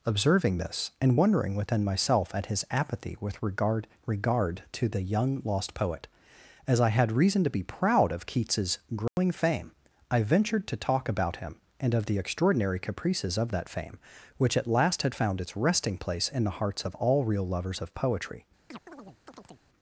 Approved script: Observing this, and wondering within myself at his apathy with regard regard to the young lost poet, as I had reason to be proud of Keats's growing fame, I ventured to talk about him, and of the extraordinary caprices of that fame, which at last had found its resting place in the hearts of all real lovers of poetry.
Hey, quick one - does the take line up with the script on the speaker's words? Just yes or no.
yes